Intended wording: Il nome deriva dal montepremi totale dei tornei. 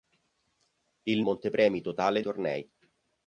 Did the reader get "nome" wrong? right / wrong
wrong